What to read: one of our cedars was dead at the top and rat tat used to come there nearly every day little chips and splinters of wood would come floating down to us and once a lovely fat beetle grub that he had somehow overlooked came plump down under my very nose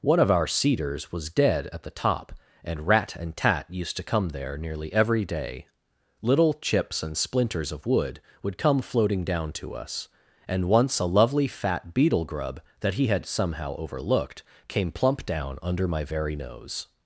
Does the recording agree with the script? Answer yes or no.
no